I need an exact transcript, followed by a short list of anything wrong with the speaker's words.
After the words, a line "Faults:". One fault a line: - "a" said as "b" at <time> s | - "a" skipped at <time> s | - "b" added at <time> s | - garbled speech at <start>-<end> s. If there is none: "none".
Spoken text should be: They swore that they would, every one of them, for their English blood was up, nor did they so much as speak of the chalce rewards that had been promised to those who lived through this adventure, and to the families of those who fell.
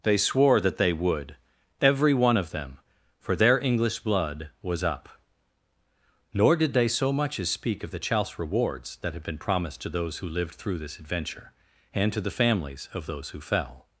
They swore that they would, every one of them, for their English blood was up, nor did they so much as speak of the chalce rewards that had been promised to those who lived through this adventure, and to the families of those who fell.
Faults:
none